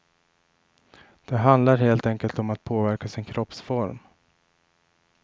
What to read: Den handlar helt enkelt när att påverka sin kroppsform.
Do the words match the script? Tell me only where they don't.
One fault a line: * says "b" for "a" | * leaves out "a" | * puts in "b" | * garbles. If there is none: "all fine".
* says "Det" for "Den"
* says "om" for "när"